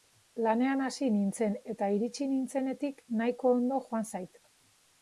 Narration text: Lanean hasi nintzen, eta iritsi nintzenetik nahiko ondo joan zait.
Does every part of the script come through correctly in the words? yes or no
yes